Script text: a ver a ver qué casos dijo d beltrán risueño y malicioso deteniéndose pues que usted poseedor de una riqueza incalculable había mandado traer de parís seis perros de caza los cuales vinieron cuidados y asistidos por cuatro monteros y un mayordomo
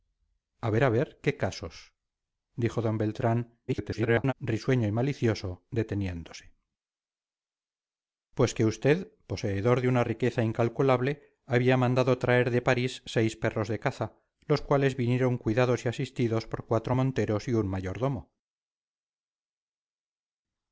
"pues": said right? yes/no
yes